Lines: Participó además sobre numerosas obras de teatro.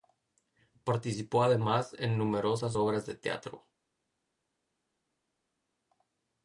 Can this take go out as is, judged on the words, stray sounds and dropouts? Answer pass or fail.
fail